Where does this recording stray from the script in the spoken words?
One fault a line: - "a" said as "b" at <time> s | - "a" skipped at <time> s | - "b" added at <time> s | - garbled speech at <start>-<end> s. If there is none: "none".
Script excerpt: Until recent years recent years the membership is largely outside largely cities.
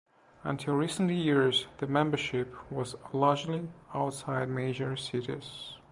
- "recent years" skipped at 1.7 s
- "is" said as "was" at 2.7 s
- "largely" said as "major" at 4.5 s